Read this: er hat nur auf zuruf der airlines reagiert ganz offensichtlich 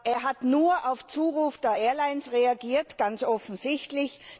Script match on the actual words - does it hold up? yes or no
yes